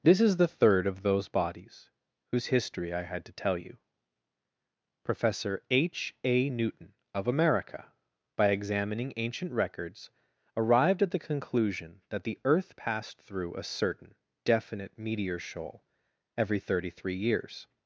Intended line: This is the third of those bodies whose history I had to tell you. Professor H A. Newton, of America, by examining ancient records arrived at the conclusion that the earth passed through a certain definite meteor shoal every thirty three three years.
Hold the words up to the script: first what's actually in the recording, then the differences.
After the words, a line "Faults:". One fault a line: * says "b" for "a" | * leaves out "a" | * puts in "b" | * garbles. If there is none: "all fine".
This is the third of those bodies whose history I had to tell you. Professor H A. Newton, of America, by examining ancient records arrived at the conclusion that the earth passed through a certain definite meteor shoal every thirty three years.
Faults:
* leaves out "three"